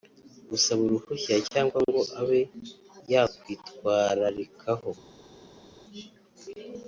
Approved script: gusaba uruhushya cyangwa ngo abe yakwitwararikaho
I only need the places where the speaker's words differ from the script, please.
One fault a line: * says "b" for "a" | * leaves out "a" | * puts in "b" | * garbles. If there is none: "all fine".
all fine